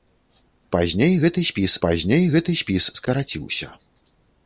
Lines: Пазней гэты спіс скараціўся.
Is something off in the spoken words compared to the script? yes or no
yes